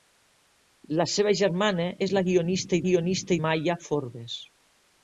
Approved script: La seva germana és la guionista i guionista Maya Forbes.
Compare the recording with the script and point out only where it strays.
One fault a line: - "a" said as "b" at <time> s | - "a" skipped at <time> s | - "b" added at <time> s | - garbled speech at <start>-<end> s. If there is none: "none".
none